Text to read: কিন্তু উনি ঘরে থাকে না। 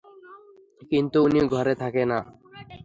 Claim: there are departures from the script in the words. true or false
false